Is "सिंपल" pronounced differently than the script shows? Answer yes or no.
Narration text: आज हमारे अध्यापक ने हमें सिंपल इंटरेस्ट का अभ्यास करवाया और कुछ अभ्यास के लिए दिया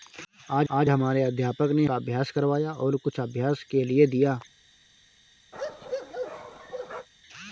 yes